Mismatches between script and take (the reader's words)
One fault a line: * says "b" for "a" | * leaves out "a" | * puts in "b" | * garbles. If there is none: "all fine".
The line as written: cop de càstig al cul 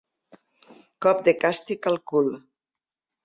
all fine